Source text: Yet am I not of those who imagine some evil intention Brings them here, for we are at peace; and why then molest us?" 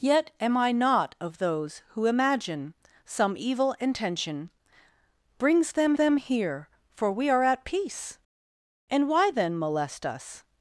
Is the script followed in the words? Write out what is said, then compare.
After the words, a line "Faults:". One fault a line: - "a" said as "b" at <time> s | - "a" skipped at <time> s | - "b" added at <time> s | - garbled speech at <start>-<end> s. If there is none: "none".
Yet am I not of those who imagine some evil intention Brings them them here, for we are at peace; and why then molest us?"
Faults:
- "them" added at 5.9 s